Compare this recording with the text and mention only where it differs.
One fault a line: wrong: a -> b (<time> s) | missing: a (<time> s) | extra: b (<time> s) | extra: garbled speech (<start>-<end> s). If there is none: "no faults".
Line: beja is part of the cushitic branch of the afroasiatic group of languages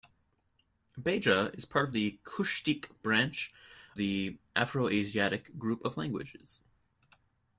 missing: of (3.5 s)